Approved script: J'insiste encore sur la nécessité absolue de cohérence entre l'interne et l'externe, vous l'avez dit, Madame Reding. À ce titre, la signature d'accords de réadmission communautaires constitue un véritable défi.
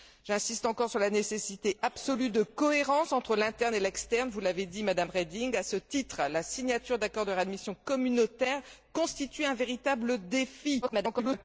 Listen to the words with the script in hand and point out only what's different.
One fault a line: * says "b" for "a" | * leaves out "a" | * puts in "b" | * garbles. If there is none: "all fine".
* garbles